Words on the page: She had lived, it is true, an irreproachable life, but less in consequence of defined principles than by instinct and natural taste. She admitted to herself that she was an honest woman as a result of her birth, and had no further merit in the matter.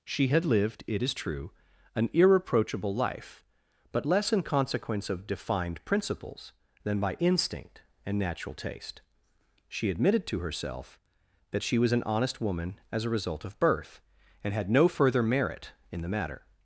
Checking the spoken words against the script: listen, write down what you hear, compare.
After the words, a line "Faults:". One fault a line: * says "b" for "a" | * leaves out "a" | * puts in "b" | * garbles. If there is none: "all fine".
She had lived, it is true, an irreproachable life, but less in consequence of defined principles than by instinct and natural taste. She admitted to herself that she was an honest woman as a result of birth, and had no further merit in the matter.
Faults:
* leaves out "her"